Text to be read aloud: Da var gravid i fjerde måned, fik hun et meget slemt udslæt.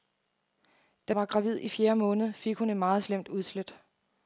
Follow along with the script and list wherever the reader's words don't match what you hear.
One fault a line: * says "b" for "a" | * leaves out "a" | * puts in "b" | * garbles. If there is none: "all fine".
all fine